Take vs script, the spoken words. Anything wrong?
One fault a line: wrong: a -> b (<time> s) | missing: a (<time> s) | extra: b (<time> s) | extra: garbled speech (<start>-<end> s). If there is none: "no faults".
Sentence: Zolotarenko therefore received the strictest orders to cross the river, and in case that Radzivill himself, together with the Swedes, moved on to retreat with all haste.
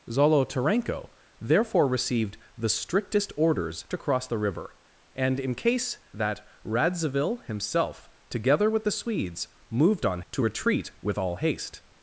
no faults